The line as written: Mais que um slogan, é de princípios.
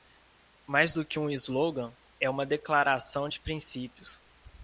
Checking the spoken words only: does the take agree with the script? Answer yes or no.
no